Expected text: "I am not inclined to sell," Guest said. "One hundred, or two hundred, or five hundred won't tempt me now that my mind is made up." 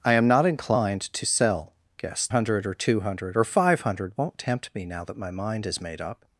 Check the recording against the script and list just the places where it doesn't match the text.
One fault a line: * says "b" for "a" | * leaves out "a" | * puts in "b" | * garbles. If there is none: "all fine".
* leaves out "said One"